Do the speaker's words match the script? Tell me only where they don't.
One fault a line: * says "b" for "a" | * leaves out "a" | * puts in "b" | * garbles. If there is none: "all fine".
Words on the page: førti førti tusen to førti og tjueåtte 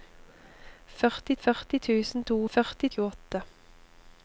all fine